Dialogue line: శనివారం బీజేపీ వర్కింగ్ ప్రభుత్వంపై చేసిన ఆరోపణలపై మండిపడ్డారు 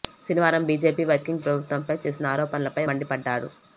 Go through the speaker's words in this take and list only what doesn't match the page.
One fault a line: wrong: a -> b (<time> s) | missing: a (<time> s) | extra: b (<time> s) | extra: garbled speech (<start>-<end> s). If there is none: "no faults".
no faults